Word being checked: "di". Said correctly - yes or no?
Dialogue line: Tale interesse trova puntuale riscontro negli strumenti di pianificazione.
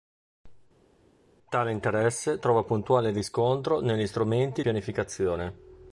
no